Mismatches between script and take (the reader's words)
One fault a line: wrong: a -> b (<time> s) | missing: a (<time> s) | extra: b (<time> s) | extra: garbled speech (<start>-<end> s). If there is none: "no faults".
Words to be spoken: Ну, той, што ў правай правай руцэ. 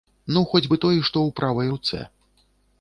extra: хоць бы (0.5 s)
missing: правай (1.7 s)